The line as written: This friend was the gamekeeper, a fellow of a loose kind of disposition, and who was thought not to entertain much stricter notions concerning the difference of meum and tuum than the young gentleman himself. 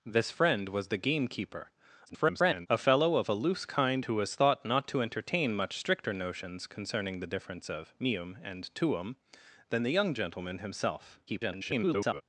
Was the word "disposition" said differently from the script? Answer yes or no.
yes